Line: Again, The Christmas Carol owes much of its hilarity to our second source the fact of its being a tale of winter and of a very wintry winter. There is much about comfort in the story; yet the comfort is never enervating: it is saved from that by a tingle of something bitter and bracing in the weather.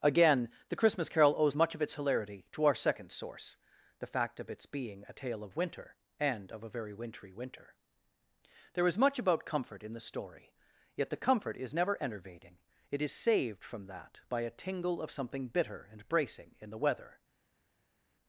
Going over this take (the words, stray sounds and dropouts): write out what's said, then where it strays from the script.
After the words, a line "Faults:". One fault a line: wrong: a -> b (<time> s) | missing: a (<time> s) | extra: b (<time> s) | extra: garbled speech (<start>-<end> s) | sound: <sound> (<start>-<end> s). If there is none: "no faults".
Again, The Christmas Carol owes much of its hilarity to our second source the fact of its being a tale of winter and of a very wintry winter. There is much about comfort in the story; yet the comfort is never enervating: it is saved from that by a tingle of something bitter and bracing in the weather.
Faults:
no faults